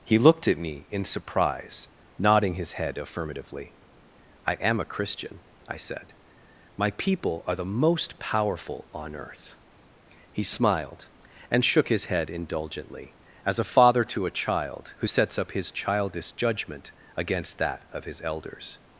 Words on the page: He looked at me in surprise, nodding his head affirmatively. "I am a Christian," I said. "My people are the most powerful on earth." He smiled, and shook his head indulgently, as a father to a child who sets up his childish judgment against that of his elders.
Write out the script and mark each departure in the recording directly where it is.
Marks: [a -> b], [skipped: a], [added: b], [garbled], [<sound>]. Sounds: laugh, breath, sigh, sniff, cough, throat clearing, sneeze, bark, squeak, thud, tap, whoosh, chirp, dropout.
He looked at me in surprise, nodding his head affirmatively. "I am a Christian," I said. "My people are the most powerful on earth." He smiled, and shook his head indulgently, as a father to a child who sets up his childish judgment against that of his elders.